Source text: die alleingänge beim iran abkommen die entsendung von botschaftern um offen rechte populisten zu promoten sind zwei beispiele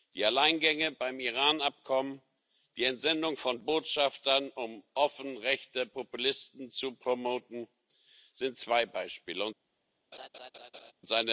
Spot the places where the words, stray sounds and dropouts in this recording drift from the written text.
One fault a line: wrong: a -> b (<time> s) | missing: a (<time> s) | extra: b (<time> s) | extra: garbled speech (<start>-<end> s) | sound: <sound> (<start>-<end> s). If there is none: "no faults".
sound: laugh (10.1-10.9 s)